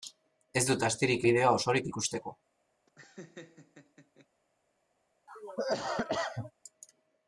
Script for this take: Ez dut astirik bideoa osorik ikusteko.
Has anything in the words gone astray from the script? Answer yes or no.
no